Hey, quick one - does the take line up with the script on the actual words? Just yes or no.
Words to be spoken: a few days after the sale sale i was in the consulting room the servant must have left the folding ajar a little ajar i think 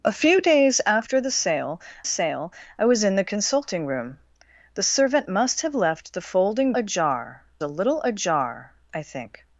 yes